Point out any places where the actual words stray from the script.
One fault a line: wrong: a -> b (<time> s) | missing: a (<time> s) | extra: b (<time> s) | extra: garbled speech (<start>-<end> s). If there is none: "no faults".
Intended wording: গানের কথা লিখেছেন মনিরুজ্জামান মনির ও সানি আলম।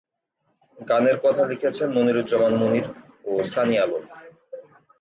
no faults